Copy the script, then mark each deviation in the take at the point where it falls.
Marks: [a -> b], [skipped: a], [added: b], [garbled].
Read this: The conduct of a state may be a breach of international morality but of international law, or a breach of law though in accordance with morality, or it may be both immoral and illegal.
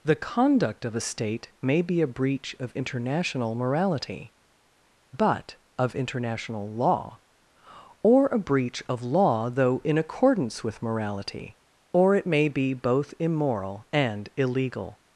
The conduct of a state may be a breach of international morality but of international law, or a breach of law though in accordance with morality, or it may be both immoral and illegal.